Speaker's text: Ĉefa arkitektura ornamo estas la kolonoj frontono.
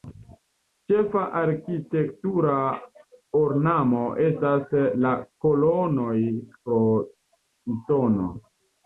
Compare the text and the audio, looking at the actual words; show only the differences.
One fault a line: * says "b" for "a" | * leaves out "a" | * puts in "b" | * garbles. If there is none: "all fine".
all fine